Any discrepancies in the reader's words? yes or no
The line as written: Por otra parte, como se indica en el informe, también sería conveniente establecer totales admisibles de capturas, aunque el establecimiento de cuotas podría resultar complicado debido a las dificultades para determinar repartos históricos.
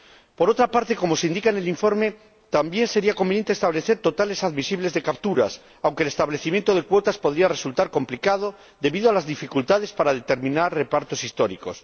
no